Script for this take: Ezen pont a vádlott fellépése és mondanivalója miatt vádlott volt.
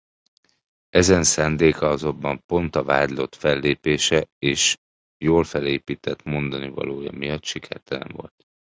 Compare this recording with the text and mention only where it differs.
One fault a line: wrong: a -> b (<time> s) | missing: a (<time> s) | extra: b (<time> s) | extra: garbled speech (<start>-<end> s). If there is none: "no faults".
extra: szándéka azonban (1.2 s)
extra: jól felépített (5.2 s)
wrong: vádlott -> sikertelen (7.4 s)